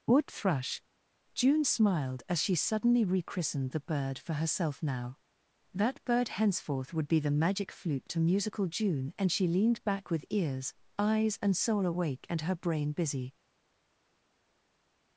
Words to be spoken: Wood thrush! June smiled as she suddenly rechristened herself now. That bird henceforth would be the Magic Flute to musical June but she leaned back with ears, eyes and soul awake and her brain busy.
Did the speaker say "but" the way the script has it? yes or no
no